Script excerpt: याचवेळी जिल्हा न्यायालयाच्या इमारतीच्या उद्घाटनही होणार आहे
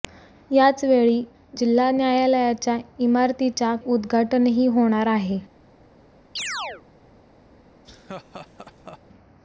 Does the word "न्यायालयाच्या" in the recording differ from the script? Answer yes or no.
no